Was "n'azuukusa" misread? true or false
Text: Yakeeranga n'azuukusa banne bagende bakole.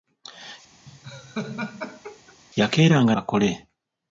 true